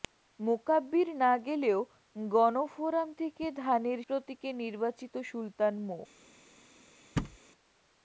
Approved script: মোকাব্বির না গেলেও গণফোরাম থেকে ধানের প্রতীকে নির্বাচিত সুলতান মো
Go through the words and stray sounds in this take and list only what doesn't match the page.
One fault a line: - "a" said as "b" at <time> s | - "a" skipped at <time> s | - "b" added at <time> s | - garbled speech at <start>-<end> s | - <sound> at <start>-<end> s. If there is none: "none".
- thud at 7.2-7.4 s